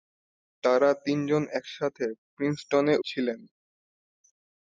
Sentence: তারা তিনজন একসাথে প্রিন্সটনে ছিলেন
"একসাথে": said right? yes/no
yes